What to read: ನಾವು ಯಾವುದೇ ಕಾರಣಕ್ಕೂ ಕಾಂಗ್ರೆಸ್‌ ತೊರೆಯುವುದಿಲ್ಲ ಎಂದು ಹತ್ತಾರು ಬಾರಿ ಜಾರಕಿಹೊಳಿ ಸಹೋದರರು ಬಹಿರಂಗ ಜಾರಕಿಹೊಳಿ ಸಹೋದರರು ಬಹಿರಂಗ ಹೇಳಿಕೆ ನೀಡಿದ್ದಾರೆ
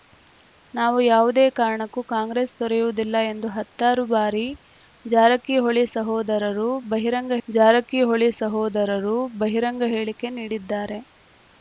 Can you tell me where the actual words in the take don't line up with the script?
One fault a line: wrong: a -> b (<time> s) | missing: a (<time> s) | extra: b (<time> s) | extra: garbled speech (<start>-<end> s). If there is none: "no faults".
no faults